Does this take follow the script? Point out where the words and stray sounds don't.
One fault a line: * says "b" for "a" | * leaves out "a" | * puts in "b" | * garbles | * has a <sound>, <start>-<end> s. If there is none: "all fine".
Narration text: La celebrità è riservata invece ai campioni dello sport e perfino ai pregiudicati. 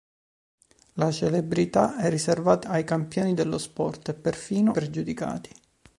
* leaves out "invece"
* leaves out "ai"